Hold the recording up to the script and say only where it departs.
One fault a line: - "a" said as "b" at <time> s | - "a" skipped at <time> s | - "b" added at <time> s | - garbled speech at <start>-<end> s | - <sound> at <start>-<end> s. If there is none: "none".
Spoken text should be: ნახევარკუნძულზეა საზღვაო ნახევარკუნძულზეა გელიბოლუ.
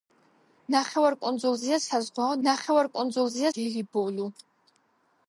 none